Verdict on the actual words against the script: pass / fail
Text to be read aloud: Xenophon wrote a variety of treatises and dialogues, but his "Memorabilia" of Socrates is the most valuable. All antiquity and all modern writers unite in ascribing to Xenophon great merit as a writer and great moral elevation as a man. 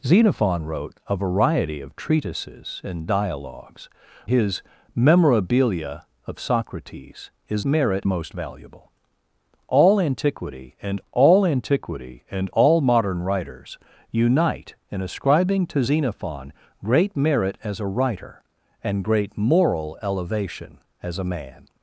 fail